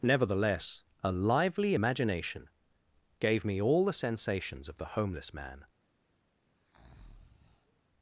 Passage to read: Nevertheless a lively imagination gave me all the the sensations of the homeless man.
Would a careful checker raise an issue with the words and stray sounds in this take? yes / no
yes